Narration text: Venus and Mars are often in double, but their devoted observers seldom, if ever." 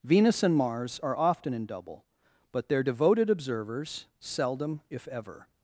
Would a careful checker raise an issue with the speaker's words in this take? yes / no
no